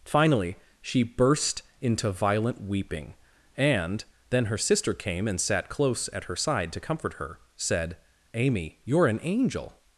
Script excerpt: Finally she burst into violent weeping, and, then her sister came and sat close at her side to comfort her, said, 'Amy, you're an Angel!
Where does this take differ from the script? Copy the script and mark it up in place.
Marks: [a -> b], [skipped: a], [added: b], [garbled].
Finally she burst into violent weeping, and, then her sister came and sat close at her side to comfort her, said, 'Amy, you're an Angel!